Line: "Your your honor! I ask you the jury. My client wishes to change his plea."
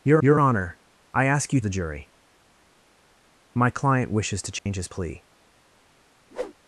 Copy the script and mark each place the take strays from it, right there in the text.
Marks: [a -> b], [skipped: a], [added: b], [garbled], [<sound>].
"Your your honor! I ask you the jury. My client wishes to change [dropout] his plea." [whoosh]